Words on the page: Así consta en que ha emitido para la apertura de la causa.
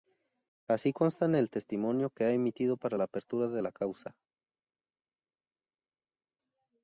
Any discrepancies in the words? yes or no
yes